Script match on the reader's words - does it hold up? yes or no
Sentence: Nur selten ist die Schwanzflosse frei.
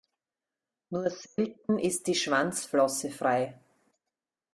yes